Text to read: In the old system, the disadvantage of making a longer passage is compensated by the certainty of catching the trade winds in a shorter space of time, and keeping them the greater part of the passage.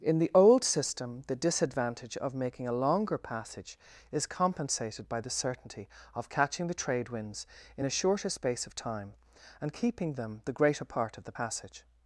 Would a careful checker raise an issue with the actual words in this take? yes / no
no